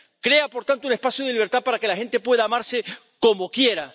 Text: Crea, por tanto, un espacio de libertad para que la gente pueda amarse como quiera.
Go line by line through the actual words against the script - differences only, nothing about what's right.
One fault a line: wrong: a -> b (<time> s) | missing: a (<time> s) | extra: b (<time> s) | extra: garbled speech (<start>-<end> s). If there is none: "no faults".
no faults